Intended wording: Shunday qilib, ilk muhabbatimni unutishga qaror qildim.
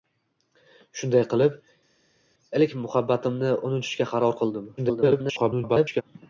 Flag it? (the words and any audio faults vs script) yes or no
yes